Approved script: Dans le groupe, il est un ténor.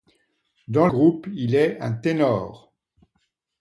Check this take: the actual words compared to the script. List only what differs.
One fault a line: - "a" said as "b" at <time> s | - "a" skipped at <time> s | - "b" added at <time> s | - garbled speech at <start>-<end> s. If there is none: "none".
- "le" skipped at 0.9 s